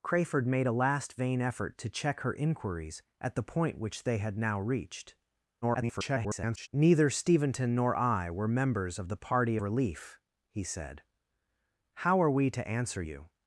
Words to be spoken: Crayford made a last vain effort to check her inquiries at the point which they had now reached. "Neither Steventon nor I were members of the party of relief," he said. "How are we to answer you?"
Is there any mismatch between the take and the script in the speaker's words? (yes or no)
yes